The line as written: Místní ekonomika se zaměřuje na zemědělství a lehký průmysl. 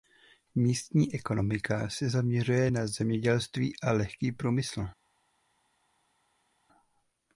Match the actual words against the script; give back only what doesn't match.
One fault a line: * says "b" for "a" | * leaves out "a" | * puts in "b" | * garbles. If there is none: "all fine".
all fine